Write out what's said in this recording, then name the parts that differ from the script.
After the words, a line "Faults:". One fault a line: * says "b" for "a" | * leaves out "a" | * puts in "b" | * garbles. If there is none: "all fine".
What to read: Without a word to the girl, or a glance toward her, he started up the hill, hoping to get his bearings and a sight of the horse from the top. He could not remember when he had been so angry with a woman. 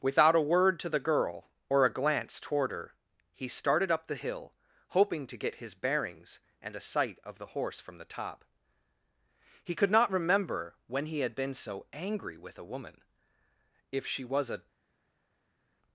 Without a word to the girl, or a glance toward her, he started up the hill, hoping to get his bearings and a sight of the horse from the top. He could not remember when he had been so angry with a woman. "If she was a
Faults:
* puts in "If she was a"